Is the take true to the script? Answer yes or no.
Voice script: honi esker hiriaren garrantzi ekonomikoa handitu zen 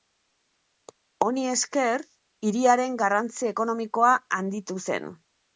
yes